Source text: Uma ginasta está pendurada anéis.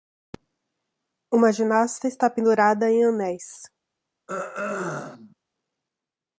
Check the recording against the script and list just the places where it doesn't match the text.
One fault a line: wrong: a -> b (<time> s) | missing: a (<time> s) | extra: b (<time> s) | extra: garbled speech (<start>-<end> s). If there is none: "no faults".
extra: em (2.9 s)